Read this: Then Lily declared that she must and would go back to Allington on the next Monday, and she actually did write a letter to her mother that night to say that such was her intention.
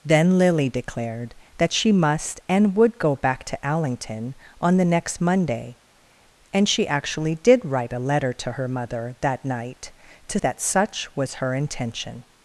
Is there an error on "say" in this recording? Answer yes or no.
yes